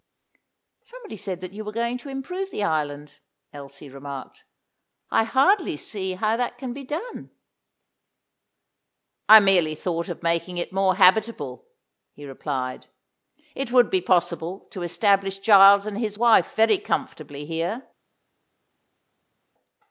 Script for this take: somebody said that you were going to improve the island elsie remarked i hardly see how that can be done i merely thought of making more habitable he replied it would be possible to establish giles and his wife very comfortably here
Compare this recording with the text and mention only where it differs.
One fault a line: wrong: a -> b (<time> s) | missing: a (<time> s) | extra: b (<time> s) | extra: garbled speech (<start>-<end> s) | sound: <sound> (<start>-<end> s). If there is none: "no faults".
extra: it (10.6 s)